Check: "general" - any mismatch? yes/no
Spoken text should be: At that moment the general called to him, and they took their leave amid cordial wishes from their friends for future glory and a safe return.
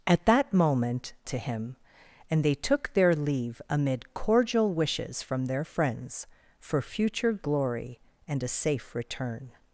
yes